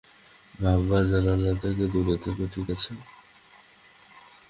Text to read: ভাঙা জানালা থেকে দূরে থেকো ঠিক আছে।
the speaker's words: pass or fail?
pass